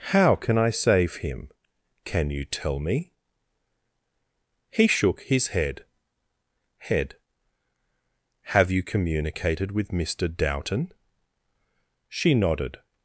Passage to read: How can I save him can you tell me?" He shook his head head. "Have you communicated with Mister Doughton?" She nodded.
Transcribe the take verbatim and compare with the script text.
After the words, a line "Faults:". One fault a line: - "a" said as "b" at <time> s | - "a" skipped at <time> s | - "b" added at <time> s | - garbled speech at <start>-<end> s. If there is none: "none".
How can I save him can you tell me?" He shook his head head. "Have you communicated with Mister Doughton?" She nodded.
Faults:
none